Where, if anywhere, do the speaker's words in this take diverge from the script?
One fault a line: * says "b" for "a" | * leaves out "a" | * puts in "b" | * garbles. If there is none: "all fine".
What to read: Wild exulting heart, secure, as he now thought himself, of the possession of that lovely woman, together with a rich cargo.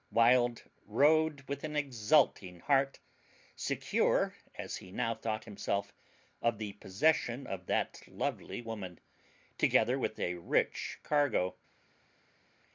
* puts in "rode with an"